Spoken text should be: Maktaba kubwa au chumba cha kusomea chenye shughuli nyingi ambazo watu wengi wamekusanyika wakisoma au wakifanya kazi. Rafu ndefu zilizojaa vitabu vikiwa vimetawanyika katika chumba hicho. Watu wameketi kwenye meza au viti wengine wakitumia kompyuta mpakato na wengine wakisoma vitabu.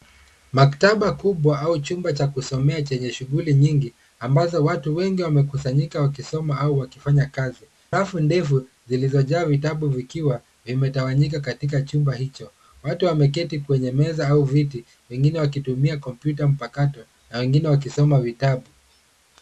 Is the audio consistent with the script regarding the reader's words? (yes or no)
yes